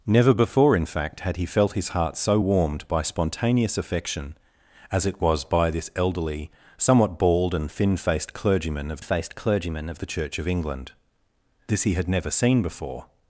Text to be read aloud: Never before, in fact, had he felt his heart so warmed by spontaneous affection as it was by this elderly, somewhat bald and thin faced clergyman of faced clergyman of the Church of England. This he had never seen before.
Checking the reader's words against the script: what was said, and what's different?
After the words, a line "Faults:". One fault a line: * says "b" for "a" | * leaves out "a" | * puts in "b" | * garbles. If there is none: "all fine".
Never before, in fact, had he felt his heart so warmed by spontaneous affection as it was by this elderly, somewhat bald and thin faced clergyman of faced clergyman of the Church of England. This he had never seen before.
Faults:
all fine